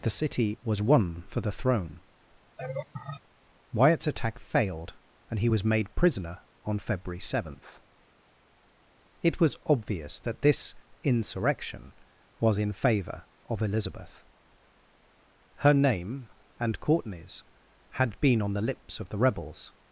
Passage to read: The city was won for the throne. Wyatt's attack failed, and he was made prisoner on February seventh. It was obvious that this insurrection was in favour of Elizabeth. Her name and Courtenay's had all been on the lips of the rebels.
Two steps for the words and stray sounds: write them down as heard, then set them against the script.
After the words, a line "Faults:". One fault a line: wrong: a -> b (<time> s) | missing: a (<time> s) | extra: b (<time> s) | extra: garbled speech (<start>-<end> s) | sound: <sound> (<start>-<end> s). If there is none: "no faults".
The city was won for the throne. Wyatt's attack failed, and he was made prisoner on February seventh. It was obvious that this insurrection was in favour of Elizabeth. Her name and Courtenay's had been on the lips of the rebels.
Faults:
sound: laugh (2.6-3.2 s)
missing: all (18.2 s)